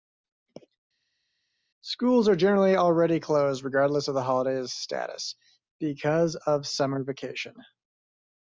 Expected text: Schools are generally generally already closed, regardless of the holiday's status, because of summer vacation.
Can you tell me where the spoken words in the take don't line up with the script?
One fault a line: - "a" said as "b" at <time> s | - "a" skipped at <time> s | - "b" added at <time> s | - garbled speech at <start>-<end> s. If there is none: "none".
- "generally" skipped at 2.8 s